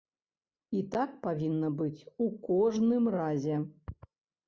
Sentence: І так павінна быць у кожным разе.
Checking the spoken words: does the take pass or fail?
pass